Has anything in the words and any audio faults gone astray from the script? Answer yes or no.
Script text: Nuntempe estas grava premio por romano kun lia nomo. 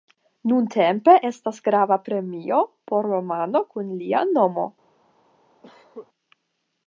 yes